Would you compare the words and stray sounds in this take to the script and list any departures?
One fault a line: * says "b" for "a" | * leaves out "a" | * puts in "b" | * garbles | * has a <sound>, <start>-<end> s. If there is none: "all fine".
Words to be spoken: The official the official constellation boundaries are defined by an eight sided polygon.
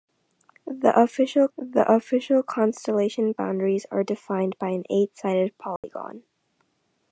* has a dropout, 5.8-5.8 s